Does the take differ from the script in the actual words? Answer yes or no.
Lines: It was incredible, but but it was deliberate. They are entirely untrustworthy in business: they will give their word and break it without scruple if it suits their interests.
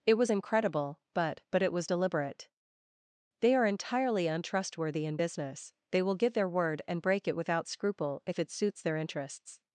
no